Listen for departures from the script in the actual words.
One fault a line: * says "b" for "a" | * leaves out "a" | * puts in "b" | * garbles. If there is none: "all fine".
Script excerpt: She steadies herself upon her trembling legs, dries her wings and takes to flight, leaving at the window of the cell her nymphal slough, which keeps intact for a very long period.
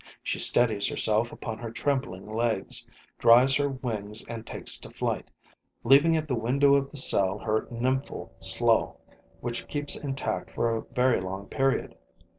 all fine